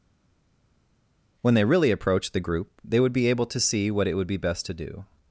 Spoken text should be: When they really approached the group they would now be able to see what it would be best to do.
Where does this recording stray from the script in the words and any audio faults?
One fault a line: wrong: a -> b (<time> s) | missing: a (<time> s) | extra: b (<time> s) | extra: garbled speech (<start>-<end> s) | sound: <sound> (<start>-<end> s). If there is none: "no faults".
missing: now (3.1 s)